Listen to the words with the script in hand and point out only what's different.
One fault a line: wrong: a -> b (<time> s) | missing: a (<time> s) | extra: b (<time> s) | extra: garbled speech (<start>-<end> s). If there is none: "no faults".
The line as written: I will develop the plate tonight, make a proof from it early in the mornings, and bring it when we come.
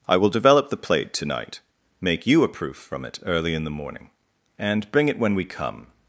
extra: you (2.3 s)
wrong: mornings -> morning (3.7 s)